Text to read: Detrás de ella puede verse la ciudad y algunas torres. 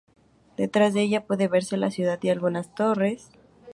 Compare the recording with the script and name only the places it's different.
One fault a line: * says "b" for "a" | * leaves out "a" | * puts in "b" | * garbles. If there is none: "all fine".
all fine